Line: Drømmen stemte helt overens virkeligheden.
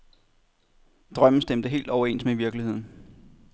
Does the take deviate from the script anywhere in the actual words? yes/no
yes